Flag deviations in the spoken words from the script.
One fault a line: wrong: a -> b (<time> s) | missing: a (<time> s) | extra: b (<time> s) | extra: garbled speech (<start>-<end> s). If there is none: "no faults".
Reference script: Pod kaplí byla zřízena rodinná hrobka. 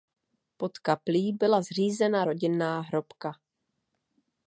no faults